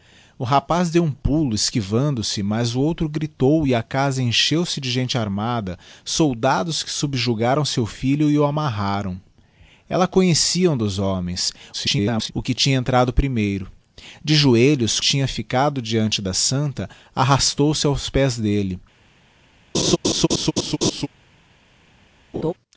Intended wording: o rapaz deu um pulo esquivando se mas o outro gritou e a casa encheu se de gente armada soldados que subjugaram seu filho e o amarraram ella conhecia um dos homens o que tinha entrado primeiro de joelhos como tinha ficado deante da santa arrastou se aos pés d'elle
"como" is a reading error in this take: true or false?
true